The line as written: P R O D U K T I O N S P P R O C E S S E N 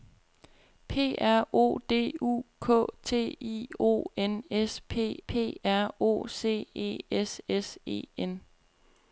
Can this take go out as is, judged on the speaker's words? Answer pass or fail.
pass